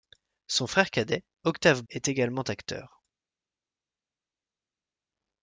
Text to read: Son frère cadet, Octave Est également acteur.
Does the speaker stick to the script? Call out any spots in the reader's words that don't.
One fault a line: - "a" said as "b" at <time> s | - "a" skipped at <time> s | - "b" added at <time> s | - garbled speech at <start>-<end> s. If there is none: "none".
none